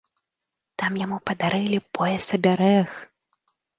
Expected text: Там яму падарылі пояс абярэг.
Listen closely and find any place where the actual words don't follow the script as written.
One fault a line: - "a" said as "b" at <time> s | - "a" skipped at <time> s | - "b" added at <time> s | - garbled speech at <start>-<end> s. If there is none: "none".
none